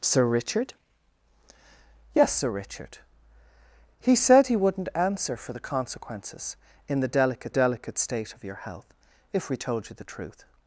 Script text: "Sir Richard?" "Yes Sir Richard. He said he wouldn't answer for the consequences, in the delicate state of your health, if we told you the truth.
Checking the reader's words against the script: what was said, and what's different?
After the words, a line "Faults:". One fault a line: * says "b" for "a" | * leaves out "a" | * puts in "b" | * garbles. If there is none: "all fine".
"Sir Richard?" "Yes Sir Richard. He said he wouldn't answer for the consequences, in the delicate delicate state of your health, if we told you the truth.
Faults:
* puts in "delicate"